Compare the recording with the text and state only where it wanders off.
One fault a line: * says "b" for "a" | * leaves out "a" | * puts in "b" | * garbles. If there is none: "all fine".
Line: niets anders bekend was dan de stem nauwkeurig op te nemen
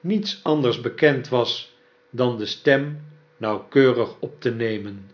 all fine